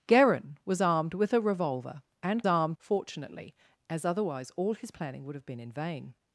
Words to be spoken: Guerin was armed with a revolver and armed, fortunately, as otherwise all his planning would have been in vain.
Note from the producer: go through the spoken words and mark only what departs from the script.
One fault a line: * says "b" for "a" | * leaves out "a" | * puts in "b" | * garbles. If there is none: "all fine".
all fine